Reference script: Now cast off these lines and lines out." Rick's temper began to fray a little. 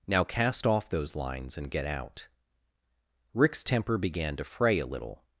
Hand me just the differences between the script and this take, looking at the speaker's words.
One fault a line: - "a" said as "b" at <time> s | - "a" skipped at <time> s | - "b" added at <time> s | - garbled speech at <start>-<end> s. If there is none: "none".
- "these" said as "those" at 0.9 s
- "lines" said as "get" at 1.7 s